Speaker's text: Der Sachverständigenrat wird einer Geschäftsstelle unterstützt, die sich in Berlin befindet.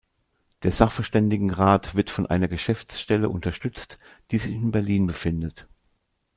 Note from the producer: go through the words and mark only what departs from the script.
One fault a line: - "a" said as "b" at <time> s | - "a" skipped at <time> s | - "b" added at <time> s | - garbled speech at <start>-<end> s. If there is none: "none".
- "von" added at 2.1 s